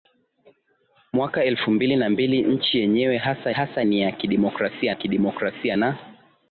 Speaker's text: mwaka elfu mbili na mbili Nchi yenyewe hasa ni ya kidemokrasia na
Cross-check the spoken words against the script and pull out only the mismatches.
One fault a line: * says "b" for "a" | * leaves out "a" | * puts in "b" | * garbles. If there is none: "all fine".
* puts in "hasa"
* puts in "kidemokrasia"